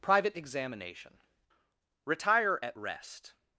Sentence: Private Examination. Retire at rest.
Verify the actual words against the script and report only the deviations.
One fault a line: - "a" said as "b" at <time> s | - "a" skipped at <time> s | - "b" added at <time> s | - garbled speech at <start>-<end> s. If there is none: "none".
none